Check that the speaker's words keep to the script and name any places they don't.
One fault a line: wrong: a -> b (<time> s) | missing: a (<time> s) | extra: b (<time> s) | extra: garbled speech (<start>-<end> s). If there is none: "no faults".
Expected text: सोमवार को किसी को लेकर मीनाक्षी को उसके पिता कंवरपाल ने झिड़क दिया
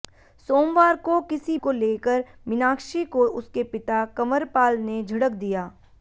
no faults